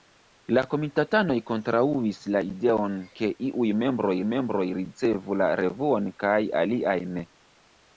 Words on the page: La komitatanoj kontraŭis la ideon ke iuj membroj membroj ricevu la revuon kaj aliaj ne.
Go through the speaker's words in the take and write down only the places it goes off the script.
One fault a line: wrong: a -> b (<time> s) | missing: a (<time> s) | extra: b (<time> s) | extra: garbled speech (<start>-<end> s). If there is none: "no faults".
no faults